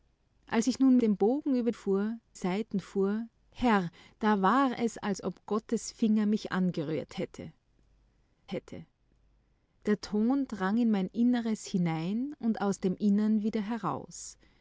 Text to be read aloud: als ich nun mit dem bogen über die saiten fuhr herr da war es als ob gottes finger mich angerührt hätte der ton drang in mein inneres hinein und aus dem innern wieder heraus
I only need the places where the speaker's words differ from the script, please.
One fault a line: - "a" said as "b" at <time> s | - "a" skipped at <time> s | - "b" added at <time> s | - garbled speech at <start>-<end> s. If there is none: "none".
- "mit" skipped at 1.0 s
- "die" said as "fuhr" at 1.7 s
- "hätte" added at 8.5 s